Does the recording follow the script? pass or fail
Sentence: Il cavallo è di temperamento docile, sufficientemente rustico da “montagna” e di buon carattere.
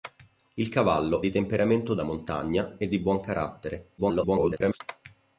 fail